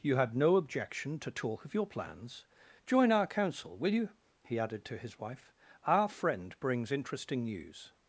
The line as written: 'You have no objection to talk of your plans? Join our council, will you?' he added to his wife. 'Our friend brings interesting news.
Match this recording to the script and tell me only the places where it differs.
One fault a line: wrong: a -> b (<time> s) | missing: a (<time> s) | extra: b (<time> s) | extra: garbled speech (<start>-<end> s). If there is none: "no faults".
wrong: have -> had (0.1 s)